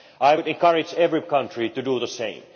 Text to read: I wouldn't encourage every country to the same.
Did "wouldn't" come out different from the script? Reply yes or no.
yes